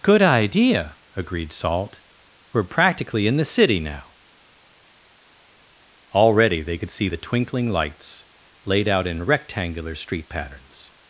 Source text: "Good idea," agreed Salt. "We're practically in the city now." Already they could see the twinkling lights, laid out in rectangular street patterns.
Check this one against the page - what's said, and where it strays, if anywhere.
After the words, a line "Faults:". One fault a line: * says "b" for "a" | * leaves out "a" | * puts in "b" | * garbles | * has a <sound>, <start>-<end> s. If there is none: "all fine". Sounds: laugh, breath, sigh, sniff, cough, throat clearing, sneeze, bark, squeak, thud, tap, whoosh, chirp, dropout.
"Good idea," agreed Salt. "We're practically in the city now." Already they could see the twinkling lights, laid out in rectangular street patterns.
Faults:
all fine